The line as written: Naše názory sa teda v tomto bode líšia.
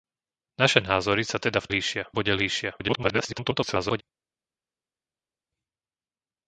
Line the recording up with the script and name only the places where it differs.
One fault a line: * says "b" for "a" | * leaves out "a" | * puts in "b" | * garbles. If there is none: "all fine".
* says "líšia" for "tomto"
* garbles